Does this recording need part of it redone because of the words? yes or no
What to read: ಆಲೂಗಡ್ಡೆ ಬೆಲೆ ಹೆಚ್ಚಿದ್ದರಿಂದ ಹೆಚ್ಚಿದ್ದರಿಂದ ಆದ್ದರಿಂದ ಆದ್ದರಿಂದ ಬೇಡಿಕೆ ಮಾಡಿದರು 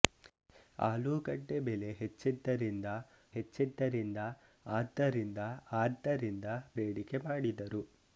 no